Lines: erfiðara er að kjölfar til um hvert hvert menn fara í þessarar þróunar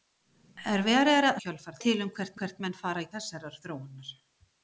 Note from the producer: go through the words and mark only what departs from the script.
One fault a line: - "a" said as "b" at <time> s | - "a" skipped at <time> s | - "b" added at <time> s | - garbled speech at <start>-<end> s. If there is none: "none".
none